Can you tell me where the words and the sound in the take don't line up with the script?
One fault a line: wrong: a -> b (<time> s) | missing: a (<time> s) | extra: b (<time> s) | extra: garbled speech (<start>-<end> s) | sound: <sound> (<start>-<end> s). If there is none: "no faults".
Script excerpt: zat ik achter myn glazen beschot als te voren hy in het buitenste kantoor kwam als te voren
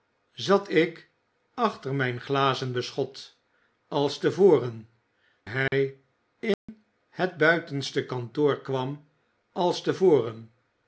sound: dropout (5.7-5.7 s)
sound: dropout (6.5-6.7 s)